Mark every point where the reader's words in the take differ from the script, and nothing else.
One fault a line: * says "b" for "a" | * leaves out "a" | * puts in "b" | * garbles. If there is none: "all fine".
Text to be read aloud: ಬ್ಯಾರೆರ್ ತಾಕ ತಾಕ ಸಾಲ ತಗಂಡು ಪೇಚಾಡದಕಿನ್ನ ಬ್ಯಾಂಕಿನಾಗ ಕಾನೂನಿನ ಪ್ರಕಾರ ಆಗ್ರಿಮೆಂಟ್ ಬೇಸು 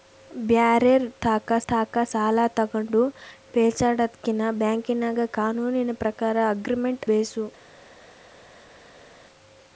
all fine